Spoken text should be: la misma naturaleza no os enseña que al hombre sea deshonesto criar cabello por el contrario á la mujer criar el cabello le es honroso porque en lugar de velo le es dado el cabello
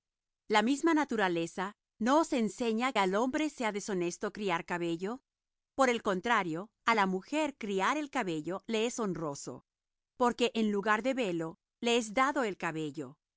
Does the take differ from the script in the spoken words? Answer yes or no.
yes